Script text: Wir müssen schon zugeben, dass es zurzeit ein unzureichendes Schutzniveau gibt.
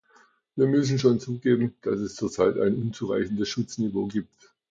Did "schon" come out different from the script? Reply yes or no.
no